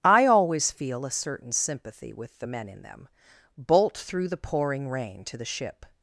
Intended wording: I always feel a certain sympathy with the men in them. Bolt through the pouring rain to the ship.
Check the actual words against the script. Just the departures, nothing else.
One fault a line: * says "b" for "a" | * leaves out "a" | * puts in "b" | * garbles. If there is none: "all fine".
all fine